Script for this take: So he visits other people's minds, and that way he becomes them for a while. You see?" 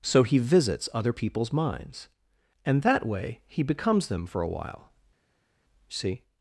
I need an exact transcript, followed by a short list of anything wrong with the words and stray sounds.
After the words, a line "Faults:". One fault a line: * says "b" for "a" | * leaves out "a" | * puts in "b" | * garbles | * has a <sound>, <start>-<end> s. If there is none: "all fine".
So he visits other people's minds, and that way he becomes them for a while. see?"
Faults:
* leaves out "You"